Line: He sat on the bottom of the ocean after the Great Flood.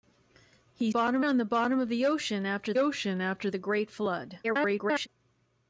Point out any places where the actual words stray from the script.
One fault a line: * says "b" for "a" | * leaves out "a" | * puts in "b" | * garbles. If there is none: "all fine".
* says "bottom" for "sat"
* puts in "ocean after"
* garbles